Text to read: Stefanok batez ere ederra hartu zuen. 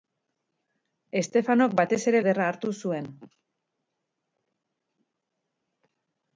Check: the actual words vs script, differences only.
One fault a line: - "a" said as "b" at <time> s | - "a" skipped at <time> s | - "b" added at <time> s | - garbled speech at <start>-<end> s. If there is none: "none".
none